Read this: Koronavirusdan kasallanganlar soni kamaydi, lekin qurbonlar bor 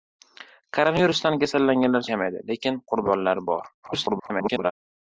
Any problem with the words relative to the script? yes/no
yes